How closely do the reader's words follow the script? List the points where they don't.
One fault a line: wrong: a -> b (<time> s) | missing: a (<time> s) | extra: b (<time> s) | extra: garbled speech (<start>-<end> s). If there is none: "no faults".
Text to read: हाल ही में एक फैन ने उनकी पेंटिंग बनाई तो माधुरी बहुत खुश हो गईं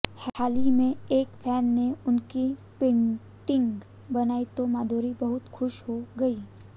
no faults